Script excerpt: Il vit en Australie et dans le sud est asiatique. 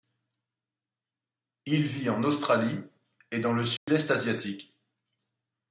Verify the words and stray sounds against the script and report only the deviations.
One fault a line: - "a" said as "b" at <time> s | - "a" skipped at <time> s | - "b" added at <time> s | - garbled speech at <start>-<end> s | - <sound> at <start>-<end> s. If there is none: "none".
- dropout at 3.8-3.9 s